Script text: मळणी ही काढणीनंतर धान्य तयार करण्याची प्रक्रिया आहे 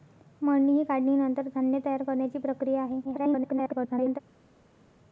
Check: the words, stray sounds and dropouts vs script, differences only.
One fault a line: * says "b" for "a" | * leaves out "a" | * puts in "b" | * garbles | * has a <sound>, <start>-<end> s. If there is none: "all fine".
* garbles